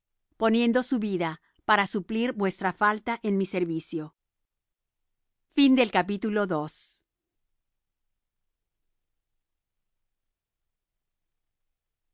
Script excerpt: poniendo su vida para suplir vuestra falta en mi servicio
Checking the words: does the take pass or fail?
pass